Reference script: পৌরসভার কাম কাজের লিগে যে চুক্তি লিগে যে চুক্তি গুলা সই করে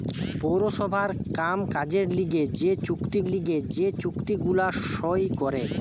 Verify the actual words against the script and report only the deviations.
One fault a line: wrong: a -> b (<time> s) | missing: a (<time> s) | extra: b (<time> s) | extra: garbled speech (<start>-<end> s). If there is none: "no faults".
no faults